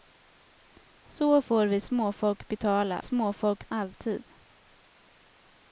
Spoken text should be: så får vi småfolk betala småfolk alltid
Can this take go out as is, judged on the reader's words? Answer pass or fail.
pass